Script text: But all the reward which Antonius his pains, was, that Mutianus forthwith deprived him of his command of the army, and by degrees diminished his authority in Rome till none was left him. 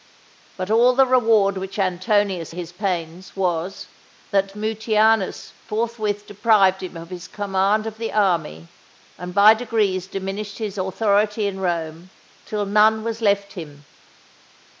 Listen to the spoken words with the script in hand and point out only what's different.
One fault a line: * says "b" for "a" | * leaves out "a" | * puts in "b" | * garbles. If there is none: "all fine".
all fine